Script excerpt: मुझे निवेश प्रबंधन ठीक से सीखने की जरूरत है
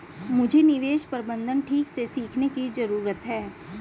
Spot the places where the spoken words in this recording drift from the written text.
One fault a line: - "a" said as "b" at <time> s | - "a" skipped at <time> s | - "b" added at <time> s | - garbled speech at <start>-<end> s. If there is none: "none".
none